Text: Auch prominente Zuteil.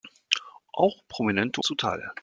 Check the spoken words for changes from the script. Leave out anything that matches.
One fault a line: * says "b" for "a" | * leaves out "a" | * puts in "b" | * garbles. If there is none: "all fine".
all fine